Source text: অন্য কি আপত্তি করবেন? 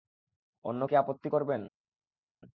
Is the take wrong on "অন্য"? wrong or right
right